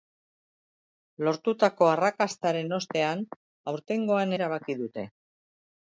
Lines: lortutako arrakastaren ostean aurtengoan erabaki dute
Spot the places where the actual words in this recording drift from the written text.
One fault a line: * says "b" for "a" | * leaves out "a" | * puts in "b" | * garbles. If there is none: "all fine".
all fine